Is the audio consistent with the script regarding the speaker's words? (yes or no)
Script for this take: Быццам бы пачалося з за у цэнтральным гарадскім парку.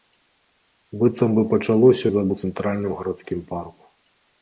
yes